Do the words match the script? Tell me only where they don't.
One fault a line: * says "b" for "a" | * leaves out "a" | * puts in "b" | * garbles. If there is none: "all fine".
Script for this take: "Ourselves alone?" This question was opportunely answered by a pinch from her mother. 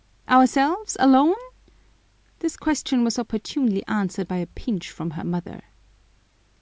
all fine